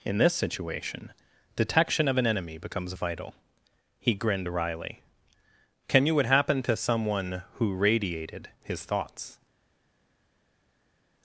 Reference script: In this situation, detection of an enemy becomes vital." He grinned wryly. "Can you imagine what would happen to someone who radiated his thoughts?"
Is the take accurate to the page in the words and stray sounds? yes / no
no